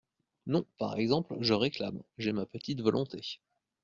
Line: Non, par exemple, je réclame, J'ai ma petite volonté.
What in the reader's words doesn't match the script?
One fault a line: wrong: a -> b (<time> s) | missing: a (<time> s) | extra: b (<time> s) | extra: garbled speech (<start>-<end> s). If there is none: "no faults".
no faults